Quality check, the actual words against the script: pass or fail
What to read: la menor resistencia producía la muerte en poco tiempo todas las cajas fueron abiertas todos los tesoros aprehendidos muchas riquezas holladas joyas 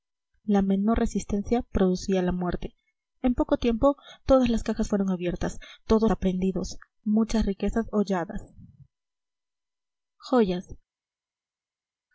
fail